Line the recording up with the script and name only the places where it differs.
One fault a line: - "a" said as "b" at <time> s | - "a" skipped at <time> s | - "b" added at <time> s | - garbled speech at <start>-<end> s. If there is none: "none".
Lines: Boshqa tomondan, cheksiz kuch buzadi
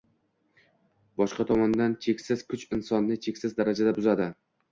- "insonni cheksiz darajada" added at 2.8 s